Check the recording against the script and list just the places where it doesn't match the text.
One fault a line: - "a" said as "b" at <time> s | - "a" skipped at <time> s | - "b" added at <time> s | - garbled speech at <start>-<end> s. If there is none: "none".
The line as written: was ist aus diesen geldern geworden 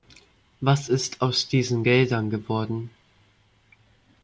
none